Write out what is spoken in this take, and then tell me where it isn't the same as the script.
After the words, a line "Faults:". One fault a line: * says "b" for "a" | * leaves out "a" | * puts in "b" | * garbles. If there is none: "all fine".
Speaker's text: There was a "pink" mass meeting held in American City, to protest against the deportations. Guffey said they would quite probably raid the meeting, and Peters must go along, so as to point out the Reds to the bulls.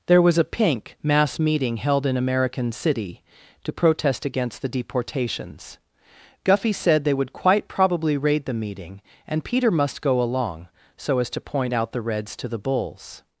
There was a "pink" mass meeting held in American City, to protest against the deportations. Guffey said they would quite probably raid the meeting, and Peter must go along, so as to point out the Reds to the bulls.
Faults:
* says "Peter" for "Peters"